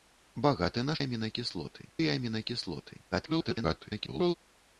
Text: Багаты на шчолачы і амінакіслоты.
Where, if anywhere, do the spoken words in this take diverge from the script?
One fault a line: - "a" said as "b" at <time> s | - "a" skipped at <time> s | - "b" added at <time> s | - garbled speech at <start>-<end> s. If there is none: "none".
- "шчолачы" said as "амінакіслоты" at 1.0 s
- garbled speech at 3.1-4.3 s